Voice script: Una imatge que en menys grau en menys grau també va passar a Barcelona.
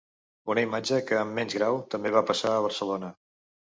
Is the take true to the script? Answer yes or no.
no